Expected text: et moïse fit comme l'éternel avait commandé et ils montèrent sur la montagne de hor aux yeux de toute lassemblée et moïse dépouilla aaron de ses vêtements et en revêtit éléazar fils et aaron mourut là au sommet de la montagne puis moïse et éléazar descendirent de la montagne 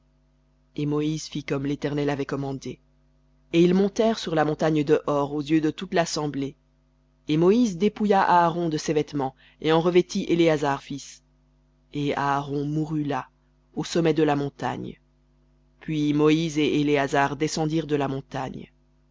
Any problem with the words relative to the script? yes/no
no